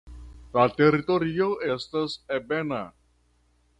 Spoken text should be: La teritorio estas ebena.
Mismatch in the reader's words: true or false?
false